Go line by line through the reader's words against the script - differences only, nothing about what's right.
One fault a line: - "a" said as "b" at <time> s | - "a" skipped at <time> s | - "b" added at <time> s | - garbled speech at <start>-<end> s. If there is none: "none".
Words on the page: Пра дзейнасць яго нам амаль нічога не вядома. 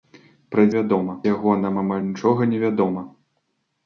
- "дзейнасць" said as "вядома" at 0.8 s